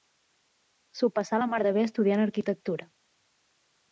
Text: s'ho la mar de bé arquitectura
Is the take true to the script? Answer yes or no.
no